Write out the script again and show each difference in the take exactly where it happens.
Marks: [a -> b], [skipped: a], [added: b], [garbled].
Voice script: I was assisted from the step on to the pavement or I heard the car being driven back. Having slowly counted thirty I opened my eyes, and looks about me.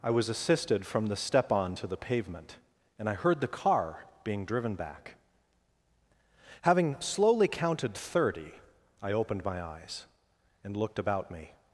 I was assisted from the step on to the pavement [or -> and] I heard the car being driven back. Having slowly counted thirty I opened my eyes, and [looks -> looked] about me.